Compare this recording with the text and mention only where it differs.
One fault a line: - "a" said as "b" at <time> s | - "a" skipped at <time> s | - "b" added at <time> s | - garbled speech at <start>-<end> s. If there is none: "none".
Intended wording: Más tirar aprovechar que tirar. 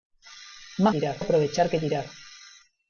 none